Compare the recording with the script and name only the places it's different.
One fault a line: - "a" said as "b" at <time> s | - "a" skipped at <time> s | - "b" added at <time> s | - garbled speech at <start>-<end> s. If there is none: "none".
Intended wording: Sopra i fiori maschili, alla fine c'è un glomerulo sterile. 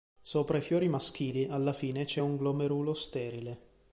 none